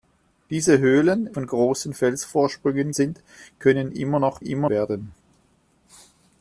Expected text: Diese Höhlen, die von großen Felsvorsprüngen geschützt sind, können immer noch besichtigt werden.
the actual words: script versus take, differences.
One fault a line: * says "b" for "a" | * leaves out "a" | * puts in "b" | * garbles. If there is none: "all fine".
* leaves out "die"
* leaves out "geschützt"
* says "immer" for "besichtigt"